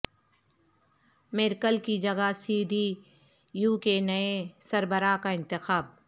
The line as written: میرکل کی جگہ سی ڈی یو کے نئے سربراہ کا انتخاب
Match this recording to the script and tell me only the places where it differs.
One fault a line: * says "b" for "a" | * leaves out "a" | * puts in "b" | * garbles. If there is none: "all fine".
all fine